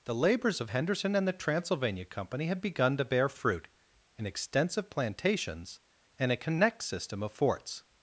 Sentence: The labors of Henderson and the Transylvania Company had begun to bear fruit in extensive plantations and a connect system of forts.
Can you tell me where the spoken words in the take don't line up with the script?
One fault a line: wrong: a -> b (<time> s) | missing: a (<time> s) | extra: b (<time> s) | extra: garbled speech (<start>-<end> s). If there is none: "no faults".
no faults